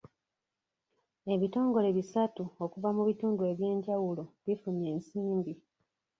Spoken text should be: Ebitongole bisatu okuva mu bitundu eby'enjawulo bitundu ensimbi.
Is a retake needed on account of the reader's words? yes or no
yes